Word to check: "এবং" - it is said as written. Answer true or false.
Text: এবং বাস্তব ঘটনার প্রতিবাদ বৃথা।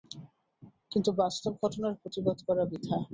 false